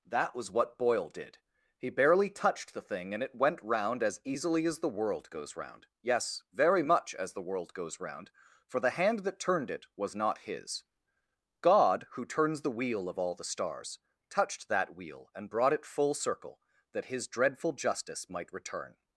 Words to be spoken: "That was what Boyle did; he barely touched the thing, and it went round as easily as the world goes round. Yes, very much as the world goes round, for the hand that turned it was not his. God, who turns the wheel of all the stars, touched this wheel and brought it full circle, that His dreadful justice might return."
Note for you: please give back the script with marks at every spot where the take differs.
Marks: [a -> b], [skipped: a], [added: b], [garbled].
"That was what Boyle did; he barely touched the thing, and it went round as easily as the world goes round. Yes, very much as the world goes round, for the hand that turned it was not his. God, who turns the wheel of all the stars, touched [this -> that] wheel and brought it full circle, that His dreadful justice might return."